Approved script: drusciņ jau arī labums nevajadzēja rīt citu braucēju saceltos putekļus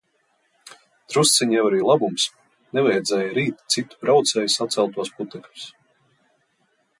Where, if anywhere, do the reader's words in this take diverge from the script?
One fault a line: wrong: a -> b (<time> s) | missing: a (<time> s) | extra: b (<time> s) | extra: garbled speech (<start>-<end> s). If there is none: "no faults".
no faults